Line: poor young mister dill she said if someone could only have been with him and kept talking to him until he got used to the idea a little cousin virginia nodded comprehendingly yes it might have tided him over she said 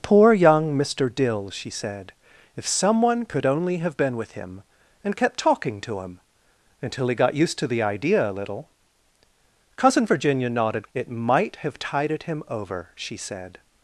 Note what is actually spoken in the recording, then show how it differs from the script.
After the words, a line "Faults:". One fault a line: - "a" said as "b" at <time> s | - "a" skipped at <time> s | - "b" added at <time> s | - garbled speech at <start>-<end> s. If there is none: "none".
poor young mister dill she said if someone could only have been with him and kept talking to him until he got used to the idea a little cousin virginia nodded it might have tided him over she said
Faults:
- "comprehendingly yes" skipped at 10.9 s